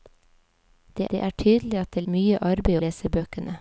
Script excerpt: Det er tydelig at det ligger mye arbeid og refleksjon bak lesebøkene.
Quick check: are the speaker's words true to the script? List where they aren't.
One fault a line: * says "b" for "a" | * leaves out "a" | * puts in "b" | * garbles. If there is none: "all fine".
* puts in "det"
* leaves out "ligger"
* leaves out "og refleksjon bak"